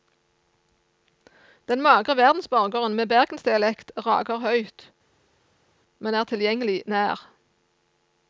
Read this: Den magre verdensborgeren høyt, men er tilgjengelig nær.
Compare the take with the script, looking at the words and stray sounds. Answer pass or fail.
fail